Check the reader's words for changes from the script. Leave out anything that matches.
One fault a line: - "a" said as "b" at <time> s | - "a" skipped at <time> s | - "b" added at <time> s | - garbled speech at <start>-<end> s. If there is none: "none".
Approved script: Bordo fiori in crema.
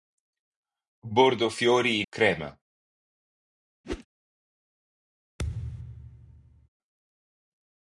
none